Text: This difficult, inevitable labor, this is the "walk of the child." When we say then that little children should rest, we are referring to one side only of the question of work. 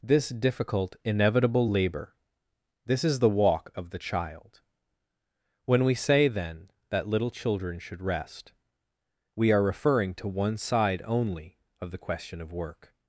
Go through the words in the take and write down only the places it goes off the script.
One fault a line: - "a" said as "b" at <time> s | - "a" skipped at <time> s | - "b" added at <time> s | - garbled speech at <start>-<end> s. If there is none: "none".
none